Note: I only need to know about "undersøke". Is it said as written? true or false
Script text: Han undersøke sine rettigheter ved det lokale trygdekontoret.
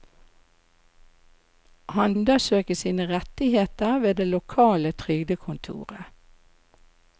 true